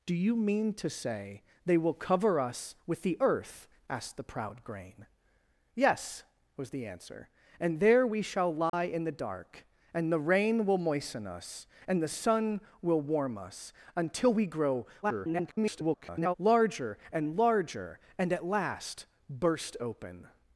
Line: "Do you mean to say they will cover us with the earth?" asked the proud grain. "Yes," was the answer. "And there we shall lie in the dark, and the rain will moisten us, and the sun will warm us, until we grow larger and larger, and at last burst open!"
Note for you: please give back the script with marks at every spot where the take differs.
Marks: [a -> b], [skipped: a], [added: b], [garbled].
"Do you mean to say they will cover us with the earth?" asked the proud grain. "Yes," was the answer. "And there we shall lie in the dark, and the rain will moisten us, and the sun will warm us, until we grow [garbled] larger and larger, and at last burst open!"